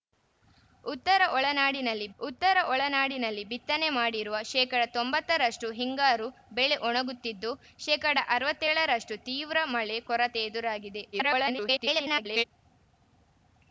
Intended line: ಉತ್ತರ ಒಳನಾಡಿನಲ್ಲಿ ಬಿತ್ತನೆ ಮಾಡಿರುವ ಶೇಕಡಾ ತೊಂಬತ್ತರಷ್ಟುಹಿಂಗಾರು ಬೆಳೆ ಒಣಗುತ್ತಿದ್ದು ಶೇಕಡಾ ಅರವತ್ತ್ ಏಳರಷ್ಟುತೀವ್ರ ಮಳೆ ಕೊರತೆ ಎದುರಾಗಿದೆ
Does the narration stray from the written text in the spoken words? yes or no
yes